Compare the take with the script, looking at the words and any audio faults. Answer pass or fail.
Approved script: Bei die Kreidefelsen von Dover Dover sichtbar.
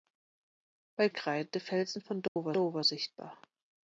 fail